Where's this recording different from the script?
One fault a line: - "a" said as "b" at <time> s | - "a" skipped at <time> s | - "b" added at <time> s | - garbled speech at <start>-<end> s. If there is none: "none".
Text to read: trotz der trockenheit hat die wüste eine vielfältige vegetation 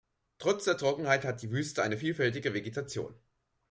none